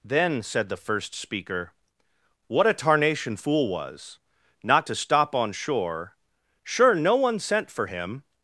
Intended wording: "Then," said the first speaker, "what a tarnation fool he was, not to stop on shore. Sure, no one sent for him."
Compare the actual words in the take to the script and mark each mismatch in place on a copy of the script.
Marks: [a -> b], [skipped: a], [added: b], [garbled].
"Then," said the first speaker, "what a tarnation fool [skipped: he] was, not to stop on shore. Sure, no one sent for him."